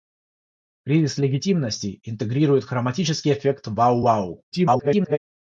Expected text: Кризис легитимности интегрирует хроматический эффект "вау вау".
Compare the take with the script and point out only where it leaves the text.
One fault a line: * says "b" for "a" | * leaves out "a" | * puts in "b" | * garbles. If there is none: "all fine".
* garbles